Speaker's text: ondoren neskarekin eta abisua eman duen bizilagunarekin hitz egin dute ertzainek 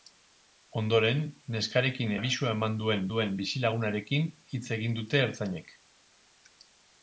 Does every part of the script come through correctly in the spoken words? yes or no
no